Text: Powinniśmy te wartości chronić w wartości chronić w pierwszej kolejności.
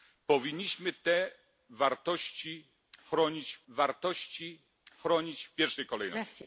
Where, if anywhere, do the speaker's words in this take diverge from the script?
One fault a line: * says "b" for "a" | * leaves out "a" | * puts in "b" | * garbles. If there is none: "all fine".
all fine